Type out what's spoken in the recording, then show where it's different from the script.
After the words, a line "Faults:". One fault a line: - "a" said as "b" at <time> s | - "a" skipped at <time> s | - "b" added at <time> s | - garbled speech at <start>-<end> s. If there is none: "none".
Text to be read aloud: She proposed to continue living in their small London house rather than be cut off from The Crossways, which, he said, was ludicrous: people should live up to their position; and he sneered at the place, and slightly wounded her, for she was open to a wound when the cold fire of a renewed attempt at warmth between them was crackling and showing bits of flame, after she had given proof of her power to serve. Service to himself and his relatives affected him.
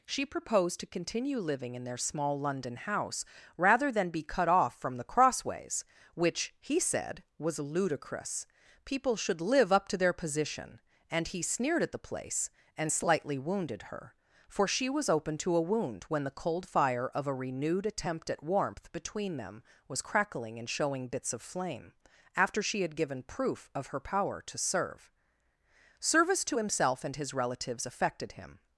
She proposed to continue living in their small London house rather than be cut off from The Crossways, which, he said, was ludicrous: people should live up to their position; and he sneered at the place, and slightly wounded her, for she was open to a wound when the cold fire of a renewed attempt at warmth between them was crackling and showing bits of flame, after she had given proof of her power to serve. Service to himself and his relatives affected him.
Faults:
none